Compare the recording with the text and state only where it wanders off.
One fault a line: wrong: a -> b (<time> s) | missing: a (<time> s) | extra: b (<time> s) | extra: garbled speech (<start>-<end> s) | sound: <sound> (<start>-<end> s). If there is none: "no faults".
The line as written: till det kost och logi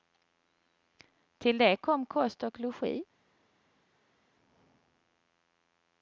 extra: kom (1.8 s)